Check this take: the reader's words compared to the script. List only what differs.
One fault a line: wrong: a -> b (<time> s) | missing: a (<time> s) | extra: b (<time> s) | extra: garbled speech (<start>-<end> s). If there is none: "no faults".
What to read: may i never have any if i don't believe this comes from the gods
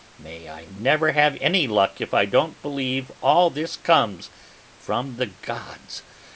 extra: luck (1.7 s)
extra: all (3.2 s)